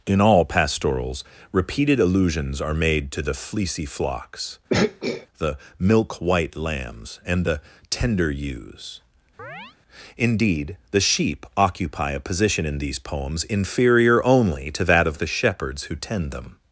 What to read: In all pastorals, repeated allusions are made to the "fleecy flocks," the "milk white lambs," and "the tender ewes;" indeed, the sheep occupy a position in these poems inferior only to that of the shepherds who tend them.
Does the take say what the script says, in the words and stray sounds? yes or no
no